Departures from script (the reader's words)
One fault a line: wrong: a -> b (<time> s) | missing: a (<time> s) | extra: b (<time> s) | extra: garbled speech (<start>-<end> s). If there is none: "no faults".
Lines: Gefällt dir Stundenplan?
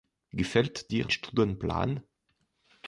no faults